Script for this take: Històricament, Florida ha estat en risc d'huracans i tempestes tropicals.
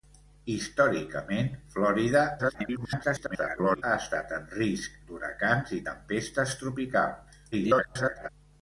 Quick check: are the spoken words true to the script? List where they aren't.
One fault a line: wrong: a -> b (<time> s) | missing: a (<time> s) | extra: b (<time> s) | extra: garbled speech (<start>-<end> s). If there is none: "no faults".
extra: garbled speech (2.4-3.8 s)
extra: garbled speech (7.5-8.3 s)